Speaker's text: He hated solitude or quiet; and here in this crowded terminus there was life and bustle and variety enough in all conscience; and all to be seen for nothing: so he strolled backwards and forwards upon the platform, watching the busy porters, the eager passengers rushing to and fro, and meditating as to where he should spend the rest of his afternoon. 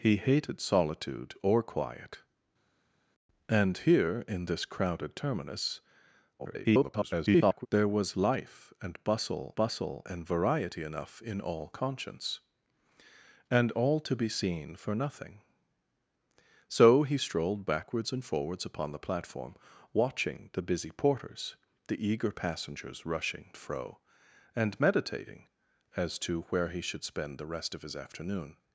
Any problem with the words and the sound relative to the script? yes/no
yes